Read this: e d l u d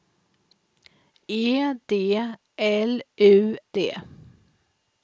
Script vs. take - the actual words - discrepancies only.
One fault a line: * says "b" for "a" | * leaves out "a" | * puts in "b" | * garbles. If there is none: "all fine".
all fine